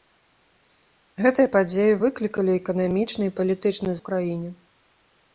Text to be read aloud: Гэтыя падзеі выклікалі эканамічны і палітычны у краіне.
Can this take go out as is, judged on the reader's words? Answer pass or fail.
pass